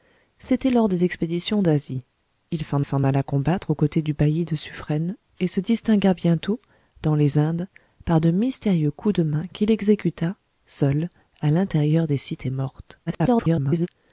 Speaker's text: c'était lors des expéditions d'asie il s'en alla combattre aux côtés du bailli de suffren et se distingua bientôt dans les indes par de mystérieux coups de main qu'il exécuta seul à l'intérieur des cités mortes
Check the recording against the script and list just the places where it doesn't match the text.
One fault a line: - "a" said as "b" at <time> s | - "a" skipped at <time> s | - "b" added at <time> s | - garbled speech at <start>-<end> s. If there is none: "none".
- "s'en" added at 2.8 s
- garbled speech at 13.1-13.9 s